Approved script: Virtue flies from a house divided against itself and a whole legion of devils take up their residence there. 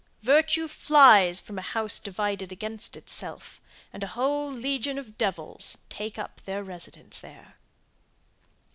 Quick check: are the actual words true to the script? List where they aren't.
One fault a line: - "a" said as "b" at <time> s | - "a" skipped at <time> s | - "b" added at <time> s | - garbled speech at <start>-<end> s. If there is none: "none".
none